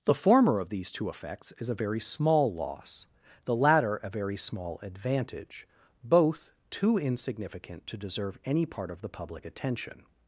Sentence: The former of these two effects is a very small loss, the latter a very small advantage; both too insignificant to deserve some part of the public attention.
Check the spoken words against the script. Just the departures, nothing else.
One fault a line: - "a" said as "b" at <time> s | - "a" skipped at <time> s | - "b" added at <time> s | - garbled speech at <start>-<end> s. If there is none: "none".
- "some" said as "any" at 8.4 s